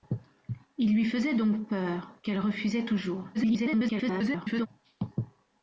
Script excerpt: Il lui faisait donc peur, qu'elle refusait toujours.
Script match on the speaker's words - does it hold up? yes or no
no